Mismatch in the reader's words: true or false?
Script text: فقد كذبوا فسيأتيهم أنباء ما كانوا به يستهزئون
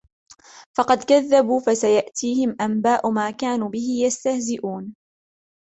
false